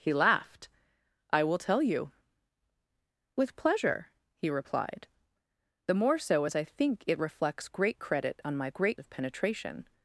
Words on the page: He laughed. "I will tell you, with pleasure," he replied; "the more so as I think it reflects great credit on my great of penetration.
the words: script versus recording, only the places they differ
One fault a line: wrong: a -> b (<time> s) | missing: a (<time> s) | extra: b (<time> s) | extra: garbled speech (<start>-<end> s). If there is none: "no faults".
no faults